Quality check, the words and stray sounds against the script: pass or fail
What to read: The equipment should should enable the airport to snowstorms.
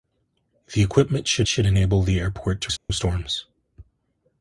fail